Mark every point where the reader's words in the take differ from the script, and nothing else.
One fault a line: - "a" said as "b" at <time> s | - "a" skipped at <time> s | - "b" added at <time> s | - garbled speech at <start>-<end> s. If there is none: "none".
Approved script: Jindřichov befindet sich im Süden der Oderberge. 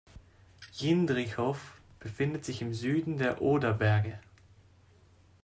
none